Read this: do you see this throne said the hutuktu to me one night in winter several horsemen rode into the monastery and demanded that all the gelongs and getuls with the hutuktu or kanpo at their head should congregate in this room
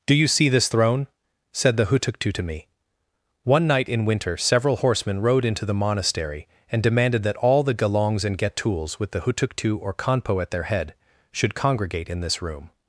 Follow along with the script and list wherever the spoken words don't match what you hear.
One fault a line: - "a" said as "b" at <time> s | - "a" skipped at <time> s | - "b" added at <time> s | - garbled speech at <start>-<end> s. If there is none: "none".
none